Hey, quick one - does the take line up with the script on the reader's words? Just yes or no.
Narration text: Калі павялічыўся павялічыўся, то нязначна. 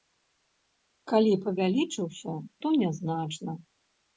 no